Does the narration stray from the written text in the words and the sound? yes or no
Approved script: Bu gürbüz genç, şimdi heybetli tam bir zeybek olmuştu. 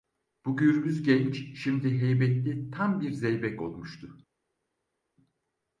no